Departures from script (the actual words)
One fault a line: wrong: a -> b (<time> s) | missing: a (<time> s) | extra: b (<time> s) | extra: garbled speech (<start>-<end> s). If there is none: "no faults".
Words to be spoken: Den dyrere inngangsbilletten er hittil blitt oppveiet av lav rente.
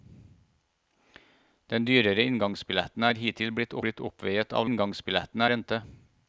extra: blitt (3.9 s)
wrong: lav -> inngangsbilletten (4.7 s)